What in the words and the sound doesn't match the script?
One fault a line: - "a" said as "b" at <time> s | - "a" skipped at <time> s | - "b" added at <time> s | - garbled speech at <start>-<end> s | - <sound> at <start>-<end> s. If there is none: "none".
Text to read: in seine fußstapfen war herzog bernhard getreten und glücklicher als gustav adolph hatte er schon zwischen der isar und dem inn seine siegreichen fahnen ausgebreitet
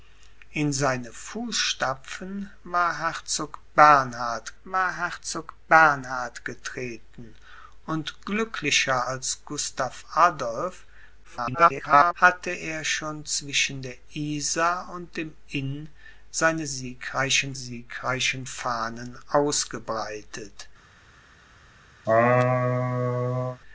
- "war herzog bernhard" added at 4.6 s
- garbled speech at 11.2-12.1 s
- "siegreichen" added at 17.5 s
- laugh at 22.0-23.6 s